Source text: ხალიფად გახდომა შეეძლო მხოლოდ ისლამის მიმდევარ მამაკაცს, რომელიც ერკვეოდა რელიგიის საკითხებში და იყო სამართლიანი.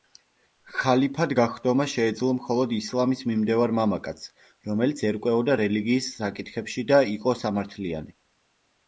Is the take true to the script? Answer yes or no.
yes